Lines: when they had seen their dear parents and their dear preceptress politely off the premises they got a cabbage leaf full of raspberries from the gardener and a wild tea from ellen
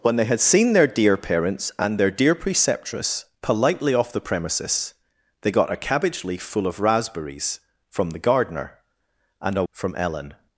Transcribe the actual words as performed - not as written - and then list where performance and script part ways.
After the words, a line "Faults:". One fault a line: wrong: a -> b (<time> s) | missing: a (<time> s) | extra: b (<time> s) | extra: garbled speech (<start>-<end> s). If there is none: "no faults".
when they had seen their dear parents and their dear preceptress politely off the premises they got a cabbage leaf full of raspberries from the gardener and a from ellen
Faults:
missing: wild tea (9.6 s)